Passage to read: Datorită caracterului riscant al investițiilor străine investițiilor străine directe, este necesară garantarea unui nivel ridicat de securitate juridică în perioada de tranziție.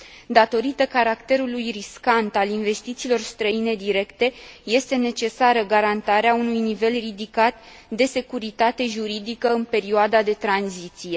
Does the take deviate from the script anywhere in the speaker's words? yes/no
yes